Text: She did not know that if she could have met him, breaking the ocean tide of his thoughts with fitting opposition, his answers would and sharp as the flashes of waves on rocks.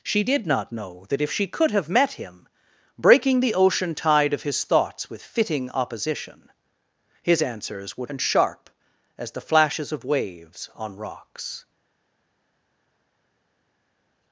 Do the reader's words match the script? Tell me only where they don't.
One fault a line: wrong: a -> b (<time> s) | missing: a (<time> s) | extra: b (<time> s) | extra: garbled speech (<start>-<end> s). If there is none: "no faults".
no faults